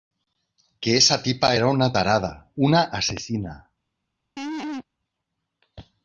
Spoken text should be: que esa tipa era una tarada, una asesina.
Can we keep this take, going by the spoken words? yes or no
yes